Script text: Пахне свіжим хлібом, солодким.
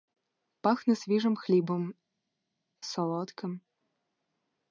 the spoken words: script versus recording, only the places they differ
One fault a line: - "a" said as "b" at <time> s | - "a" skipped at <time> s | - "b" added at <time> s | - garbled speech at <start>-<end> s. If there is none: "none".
none